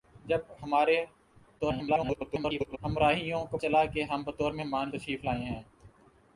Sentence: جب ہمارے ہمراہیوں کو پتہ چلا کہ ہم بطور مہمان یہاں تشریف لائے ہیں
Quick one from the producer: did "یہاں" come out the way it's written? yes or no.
no